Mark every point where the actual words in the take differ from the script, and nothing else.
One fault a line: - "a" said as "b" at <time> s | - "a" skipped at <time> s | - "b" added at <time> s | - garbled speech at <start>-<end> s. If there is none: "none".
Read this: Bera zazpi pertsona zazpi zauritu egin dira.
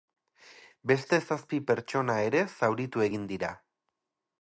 - "Bera" said as "Beste" at 0.9 s
- "zazpi" said as "ere" at 2.3 s